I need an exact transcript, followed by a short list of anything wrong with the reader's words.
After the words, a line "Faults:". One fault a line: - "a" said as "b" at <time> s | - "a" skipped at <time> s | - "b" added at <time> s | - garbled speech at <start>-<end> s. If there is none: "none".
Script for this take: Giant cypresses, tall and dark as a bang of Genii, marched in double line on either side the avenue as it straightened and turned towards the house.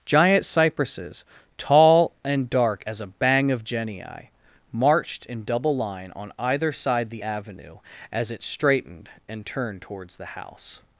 Giant cypresses, tall and dark as a bang of Genii, marched in double line on either side the avenue as it straightened and turned towards the house.
Faults:
none